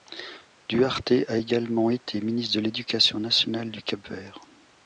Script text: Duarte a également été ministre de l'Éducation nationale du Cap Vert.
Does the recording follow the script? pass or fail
pass